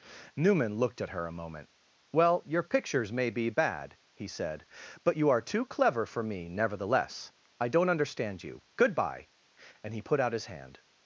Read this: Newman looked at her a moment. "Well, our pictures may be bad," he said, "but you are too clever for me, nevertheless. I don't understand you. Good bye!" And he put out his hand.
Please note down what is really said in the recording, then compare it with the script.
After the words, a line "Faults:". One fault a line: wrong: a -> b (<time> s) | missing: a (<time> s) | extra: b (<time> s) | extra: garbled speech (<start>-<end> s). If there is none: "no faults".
Newman looked at her a moment. "Well, your pictures may be bad," he said, "but you are too clever for me, nevertheless. I don't understand you. Good bye!" And he put out his hand.
Faults:
wrong: our -> your (2.5 s)